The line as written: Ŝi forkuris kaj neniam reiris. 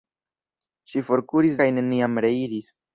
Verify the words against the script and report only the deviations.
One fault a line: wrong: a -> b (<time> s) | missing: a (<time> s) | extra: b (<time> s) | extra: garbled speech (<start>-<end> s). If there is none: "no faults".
no faults